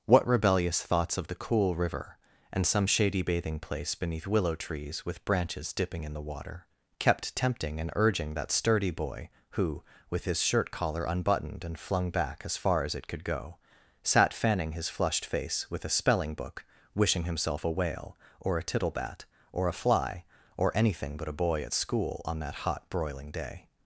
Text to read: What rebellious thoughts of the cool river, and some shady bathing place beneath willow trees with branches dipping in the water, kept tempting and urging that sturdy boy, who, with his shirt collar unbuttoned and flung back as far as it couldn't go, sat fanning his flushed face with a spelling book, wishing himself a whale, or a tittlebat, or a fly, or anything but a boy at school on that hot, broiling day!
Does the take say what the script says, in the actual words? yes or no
no